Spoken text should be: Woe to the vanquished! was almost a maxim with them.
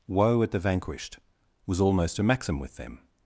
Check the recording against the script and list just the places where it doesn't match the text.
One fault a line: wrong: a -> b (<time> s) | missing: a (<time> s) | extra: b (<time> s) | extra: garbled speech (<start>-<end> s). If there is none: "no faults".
wrong: to -> at (0.4 s)